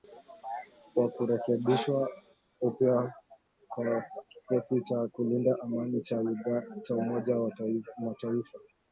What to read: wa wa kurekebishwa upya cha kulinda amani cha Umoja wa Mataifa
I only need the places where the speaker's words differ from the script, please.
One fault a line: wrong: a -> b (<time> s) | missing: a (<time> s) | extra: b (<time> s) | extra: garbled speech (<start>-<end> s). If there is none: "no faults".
missing: wa (1.1 s)
extra: kwa kikosi (3.7 s)